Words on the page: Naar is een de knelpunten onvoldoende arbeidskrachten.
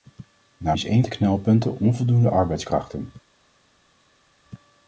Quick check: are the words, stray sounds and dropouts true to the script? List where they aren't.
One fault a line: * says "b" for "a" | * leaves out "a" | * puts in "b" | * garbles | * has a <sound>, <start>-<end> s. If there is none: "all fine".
all fine